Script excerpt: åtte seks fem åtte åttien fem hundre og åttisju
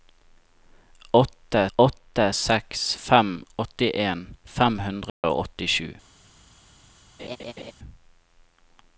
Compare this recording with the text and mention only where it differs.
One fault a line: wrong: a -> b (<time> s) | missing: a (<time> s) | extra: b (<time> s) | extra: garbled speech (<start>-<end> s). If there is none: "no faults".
extra: åtte (1.8 s)
missing: åtte (3.4 s)